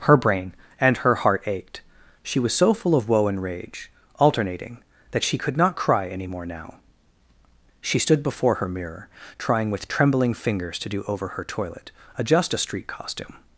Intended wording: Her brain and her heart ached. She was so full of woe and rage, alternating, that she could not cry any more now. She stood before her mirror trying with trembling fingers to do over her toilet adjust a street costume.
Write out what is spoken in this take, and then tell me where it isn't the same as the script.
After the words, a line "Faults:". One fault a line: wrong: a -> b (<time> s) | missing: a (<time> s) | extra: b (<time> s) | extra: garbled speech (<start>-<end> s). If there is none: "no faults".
Her brain and her heart ached. She was so full of woe and rage, alternating, that she could not cry any more now. She stood before her mirror trying with trembling fingers to do over her toilet adjust a street costume.
Faults:
no faults